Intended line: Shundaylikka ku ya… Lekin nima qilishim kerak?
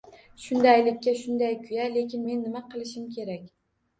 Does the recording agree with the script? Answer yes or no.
no